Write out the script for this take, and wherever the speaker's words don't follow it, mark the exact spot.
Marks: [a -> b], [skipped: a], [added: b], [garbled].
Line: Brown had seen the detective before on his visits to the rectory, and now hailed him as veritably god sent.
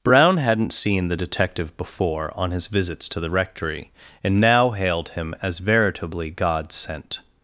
Brown [had -> hadn't] seen the detective before on his visits to the rectory, and now hailed him as veritably god sent.